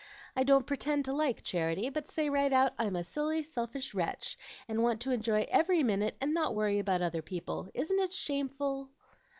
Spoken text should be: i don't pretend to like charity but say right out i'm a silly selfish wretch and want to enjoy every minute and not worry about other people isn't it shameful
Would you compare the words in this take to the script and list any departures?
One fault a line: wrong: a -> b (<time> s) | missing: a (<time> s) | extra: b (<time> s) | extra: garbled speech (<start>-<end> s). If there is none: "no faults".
no faults